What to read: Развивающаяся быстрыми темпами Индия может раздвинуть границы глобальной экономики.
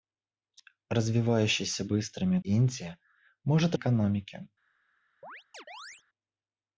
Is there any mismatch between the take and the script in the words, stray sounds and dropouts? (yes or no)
yes